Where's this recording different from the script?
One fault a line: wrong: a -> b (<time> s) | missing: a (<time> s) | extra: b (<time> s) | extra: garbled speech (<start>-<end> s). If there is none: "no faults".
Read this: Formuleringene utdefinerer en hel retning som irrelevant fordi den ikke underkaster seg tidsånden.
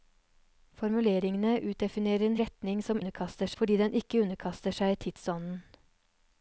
missing: hel (2.4 s)
wrong: irrelevant -> underkaster (3.0 s)